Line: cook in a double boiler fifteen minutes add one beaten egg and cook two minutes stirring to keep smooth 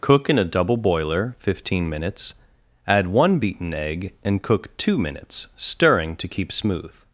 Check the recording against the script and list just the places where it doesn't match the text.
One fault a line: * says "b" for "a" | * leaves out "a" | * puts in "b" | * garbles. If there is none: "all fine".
all fine